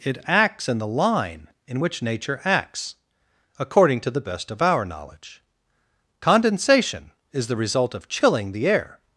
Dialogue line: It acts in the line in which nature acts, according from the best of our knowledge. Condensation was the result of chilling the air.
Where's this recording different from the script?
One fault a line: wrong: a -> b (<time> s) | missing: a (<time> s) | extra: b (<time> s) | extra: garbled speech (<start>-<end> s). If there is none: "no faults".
wrong: from -> to (4.0 s)
wrong: was -> is (7.3 s)